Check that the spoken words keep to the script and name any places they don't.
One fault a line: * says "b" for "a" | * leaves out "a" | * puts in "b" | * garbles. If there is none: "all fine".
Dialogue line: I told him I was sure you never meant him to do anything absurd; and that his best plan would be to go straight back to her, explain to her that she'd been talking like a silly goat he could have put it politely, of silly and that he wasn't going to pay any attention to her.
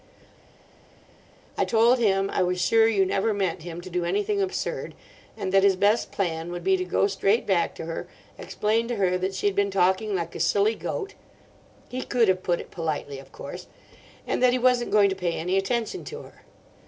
* says "course" for "silly"